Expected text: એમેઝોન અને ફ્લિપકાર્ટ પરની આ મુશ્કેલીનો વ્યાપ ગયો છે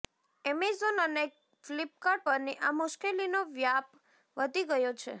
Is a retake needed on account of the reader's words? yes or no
yes